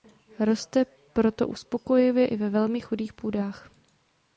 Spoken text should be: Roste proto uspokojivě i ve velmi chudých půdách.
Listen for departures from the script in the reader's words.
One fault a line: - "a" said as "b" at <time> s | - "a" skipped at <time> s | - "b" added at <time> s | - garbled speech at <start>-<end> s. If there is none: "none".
none